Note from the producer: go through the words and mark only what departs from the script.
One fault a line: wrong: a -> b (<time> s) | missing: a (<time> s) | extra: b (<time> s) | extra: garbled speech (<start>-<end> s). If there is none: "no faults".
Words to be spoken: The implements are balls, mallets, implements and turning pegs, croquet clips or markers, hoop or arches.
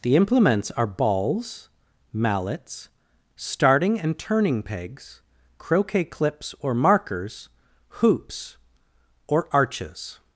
wrong: implements -> starting (3.4 s)
wrong: hoop -> hoops (8.0 s)